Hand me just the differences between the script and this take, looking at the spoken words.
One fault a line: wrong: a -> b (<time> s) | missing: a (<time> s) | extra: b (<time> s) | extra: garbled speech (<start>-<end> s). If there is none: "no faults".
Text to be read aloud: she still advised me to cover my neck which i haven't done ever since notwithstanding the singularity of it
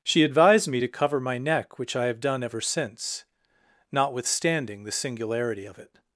missing: still (0.2 s)
wrong: haven't -> have (2.0 s)